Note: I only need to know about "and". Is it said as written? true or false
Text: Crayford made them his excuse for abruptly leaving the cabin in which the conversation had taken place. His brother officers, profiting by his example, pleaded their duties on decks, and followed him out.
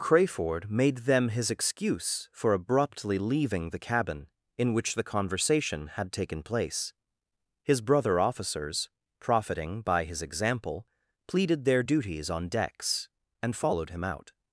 true